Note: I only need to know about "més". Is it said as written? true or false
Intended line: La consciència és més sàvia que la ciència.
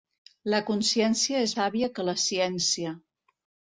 false